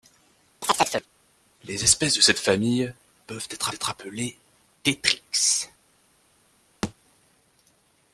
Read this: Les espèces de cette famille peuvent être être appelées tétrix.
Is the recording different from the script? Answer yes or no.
no